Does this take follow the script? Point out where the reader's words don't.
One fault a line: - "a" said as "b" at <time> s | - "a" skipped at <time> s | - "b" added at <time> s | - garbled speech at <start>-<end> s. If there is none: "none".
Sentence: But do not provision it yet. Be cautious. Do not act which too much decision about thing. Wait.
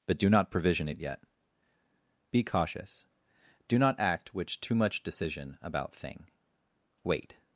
none